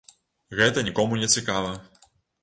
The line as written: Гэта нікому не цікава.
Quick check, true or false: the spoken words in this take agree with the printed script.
true